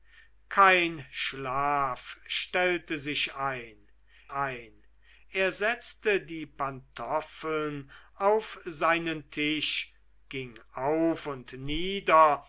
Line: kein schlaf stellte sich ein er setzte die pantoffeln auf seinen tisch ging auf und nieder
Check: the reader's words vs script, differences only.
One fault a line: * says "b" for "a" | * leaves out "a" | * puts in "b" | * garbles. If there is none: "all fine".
* puts in "ein"